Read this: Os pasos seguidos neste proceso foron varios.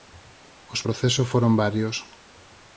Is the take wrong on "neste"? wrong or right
wrong